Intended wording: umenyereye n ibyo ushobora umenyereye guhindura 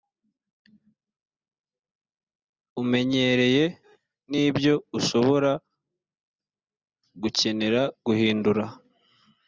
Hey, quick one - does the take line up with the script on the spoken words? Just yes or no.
no